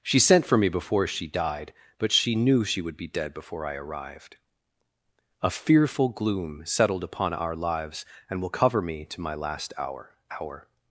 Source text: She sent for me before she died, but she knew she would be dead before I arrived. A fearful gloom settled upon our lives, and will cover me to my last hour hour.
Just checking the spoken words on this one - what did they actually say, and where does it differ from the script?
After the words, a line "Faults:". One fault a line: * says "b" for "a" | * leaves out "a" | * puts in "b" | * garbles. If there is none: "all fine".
She sent for me before she died, but she knew she would be dead before I arrived. A fearful gloom settled upon our lives, and will cover me to my last hour hour.
Faults:
all fine